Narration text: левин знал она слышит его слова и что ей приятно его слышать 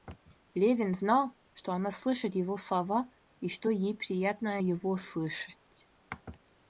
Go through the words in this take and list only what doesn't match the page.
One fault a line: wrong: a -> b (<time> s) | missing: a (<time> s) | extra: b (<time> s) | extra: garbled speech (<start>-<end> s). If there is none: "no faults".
extra: что (1.5 s)